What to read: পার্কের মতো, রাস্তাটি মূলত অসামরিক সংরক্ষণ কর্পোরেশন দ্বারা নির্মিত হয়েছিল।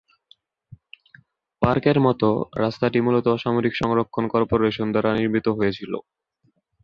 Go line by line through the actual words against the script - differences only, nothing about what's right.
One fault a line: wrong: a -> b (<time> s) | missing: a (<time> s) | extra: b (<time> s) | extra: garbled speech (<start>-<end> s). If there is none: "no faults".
no faults